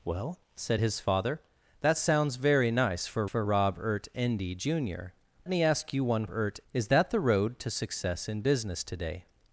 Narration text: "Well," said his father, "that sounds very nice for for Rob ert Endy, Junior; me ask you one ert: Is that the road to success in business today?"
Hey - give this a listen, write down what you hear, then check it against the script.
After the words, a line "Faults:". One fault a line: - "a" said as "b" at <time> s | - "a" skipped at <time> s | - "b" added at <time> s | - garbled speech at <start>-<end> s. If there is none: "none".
"Well," said his father, "that sounds very nice for for Rob ert Endy, Junior; me ask you one ert: Is that the road to success in business today?"
Faults:
none